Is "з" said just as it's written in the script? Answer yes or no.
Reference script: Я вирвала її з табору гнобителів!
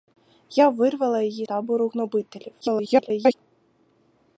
no